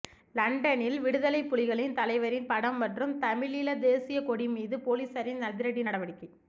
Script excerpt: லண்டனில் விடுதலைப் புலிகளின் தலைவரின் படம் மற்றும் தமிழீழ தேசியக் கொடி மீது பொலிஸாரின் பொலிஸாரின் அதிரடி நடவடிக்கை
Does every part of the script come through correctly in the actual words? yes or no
no